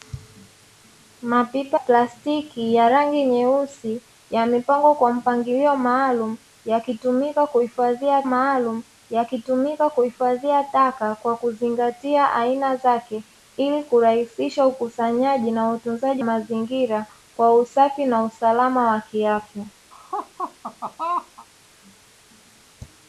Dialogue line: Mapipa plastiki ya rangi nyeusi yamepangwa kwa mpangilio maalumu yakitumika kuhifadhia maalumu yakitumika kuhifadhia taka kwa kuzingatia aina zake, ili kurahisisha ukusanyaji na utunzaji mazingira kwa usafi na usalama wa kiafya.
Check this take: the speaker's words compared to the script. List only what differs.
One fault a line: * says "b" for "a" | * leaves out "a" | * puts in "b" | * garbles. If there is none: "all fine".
all fine